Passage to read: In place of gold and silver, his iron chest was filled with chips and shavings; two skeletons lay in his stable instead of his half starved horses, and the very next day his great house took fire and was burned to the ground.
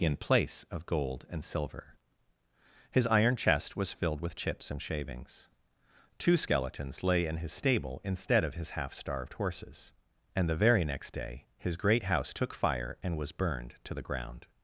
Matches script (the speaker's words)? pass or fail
pass